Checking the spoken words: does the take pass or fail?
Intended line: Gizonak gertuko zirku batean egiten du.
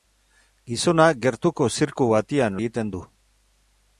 pass